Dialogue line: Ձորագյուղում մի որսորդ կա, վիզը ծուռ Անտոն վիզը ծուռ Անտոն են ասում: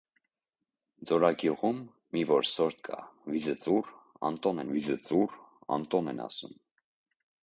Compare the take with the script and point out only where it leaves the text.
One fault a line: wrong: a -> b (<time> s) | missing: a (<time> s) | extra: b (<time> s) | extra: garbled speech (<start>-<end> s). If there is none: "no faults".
no faults